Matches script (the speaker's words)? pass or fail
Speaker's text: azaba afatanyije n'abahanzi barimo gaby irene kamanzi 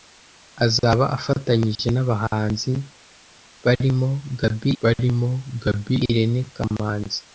fail